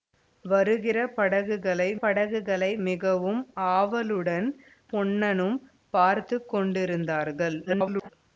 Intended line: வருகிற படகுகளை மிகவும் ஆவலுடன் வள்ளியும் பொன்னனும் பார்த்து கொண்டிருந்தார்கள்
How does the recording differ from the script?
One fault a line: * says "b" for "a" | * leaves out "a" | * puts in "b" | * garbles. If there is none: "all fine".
* puts in "படகுகளை"
* leaves out "வள்ளியும்"
* garbles